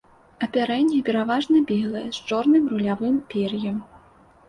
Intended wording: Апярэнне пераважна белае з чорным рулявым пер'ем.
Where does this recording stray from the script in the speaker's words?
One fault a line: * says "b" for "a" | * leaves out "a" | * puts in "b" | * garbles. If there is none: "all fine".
all fine